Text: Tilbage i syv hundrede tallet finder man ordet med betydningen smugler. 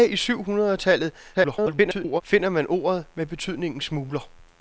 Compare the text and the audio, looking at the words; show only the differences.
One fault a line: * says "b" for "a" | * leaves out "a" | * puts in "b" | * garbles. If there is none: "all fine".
* garbles